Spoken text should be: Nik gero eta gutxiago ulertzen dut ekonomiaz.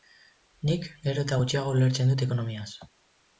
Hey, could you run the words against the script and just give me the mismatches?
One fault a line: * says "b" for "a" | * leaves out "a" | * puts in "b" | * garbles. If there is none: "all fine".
all fine